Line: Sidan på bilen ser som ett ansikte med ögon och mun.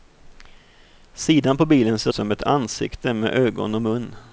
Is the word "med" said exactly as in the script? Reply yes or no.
yes